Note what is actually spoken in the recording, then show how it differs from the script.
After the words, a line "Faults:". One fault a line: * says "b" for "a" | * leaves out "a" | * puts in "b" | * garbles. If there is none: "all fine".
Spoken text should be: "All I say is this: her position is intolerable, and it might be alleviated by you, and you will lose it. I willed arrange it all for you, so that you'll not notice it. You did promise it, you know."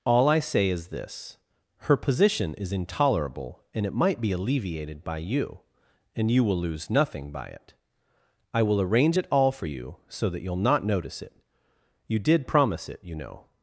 "All I say is this: her position is intolerable, and it might be alleviated by you, and you will lose nothing by it. I will arrange it all for you, so that you'll not notice it. You did promise it, you know."
Faults:
* puts in "nothing by"
* says "will" for "willed"